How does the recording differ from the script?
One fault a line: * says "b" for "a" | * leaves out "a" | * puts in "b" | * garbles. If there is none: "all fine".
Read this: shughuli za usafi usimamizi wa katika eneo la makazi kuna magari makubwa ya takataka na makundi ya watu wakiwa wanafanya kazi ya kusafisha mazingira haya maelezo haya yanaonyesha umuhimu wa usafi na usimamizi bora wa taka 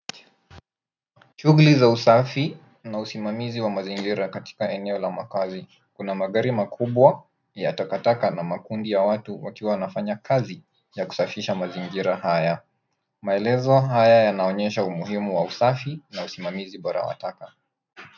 * puts in "na"
* puts in "mazingira"